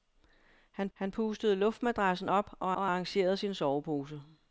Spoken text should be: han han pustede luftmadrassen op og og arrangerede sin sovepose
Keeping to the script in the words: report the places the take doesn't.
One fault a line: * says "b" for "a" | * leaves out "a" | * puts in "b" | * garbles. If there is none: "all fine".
all fine